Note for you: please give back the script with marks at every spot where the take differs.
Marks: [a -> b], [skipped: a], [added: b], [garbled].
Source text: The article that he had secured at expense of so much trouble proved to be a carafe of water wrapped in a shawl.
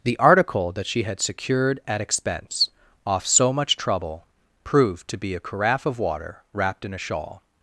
The article that [he -> she] had secured at expense [of -> off] so much trouble proved to be a carafe of water wrapped in a shawl.